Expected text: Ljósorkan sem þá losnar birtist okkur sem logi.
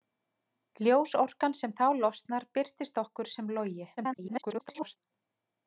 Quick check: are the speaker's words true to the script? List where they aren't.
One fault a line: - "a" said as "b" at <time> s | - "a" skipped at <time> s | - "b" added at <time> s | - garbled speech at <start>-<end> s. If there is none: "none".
- garbled speech at 4.0-5.0 s